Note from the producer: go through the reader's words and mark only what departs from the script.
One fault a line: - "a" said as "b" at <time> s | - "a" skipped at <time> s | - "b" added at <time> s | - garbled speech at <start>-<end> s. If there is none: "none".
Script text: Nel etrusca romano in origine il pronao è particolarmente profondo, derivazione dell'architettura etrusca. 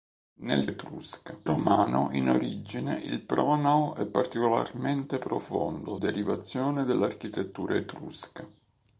none